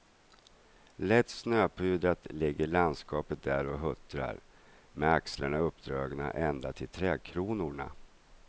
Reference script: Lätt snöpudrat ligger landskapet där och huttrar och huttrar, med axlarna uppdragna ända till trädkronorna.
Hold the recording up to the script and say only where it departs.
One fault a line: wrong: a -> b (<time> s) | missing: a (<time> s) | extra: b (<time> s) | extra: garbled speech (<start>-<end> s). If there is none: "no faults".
missing: och huttrar (4.4 s)